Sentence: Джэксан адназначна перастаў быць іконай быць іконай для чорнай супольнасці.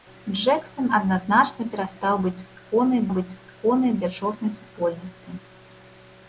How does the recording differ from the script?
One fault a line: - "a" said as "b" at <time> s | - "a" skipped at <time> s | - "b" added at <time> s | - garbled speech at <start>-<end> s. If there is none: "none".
none